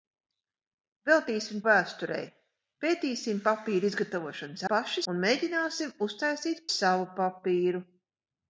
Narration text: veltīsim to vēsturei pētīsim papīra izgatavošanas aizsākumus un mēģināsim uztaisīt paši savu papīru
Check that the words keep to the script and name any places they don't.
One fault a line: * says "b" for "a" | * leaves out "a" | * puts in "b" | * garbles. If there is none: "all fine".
* leaves out "to"
* says "paši" for "aizsākumus"
* leaves out "paši"